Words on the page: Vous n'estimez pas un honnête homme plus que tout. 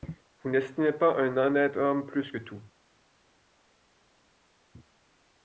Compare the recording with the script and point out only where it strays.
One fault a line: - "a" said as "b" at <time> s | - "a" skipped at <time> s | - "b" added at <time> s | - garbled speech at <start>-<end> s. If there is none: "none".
none